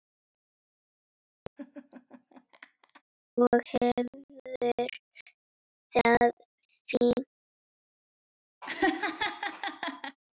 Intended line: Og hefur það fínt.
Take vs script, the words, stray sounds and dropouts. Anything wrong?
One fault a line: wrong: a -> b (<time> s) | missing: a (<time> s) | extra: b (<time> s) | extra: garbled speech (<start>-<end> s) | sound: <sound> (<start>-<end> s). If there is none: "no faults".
sound: laugh (1.6-3.0 s)
sound: laugh (8.6-10.2 s)